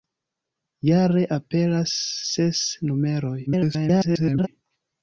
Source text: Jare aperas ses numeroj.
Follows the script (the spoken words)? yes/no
no